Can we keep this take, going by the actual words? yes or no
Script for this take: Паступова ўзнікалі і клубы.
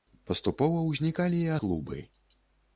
yes